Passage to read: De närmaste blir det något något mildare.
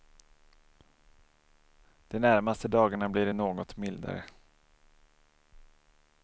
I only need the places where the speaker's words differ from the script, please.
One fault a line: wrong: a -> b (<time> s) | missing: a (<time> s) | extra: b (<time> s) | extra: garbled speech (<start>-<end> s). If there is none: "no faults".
extra: dagarna (2.7 s)
missing: något (3.8 s)